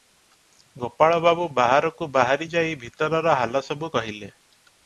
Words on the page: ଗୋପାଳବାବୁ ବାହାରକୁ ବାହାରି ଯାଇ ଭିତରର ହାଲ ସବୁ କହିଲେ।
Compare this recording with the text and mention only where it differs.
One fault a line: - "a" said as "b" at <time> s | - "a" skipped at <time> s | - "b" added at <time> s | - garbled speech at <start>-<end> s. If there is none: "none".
none